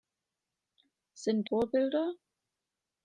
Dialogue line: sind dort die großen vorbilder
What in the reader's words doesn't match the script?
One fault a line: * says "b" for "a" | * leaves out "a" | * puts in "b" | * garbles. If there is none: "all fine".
* leaves out "dort die großen"